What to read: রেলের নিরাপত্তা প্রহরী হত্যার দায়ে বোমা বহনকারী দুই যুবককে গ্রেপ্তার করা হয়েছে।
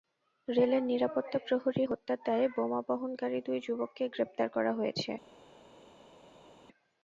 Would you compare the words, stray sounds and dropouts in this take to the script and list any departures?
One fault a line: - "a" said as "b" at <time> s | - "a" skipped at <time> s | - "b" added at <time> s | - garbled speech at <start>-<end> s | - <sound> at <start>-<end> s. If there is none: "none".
none